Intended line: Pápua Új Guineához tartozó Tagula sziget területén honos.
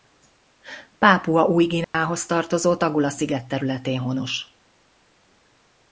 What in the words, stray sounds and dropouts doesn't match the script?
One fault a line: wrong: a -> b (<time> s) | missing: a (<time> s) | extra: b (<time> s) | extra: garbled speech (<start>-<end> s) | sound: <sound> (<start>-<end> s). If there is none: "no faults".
sound: dropout (1.8-1.9 s)